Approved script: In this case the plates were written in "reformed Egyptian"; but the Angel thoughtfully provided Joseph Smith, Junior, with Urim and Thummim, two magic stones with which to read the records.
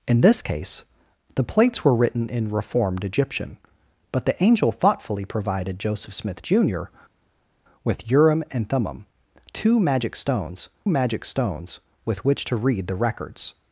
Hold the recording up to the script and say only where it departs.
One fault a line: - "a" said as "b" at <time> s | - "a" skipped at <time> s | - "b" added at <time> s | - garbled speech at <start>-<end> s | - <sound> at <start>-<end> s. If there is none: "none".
- "magic stones" added at 10.9 s